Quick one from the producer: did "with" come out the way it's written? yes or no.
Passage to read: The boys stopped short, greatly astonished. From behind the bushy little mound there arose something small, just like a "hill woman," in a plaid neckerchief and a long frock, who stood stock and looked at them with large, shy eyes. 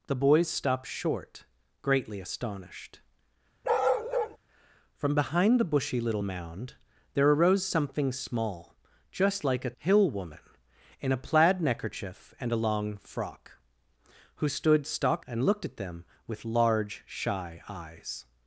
yes